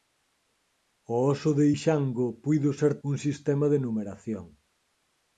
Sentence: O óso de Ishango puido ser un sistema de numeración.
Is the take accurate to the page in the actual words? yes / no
yes